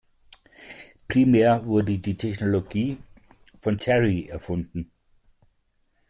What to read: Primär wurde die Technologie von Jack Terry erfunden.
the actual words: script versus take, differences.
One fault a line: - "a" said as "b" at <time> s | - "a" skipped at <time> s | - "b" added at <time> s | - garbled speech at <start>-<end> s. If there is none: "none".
- "Jack" skipped at 3.8 s